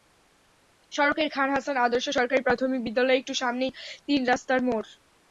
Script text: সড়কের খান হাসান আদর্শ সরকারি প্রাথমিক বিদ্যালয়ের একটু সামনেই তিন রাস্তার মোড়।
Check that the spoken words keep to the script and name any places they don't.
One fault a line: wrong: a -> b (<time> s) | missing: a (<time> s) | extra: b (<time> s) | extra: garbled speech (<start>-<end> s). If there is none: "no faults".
no faults